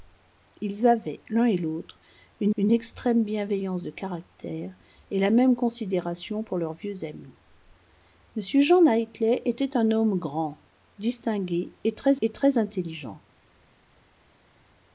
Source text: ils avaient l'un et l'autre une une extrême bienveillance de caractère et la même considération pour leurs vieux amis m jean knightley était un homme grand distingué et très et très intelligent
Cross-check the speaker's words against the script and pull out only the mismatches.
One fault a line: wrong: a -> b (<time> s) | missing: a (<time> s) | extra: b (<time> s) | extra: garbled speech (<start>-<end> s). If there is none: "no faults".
no faults